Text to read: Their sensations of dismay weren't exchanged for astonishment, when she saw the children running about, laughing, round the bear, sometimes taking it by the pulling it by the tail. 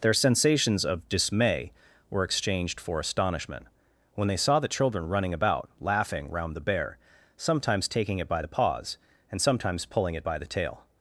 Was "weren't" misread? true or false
true